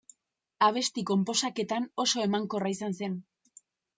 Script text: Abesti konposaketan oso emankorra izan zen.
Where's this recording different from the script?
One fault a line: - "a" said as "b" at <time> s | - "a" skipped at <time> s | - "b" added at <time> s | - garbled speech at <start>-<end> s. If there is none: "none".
none